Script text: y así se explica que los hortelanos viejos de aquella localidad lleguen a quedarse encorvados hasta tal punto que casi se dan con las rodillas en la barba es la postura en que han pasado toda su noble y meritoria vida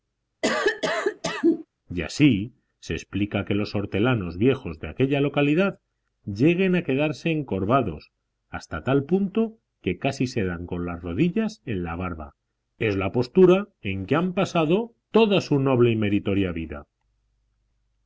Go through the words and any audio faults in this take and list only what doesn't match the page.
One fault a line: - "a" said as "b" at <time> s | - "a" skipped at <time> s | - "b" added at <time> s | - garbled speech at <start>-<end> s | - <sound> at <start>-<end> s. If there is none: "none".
- cough at 0.4-1.7 s